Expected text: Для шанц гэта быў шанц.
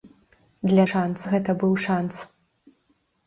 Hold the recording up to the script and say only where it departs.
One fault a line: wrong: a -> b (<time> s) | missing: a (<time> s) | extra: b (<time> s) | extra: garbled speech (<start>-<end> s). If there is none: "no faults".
no faults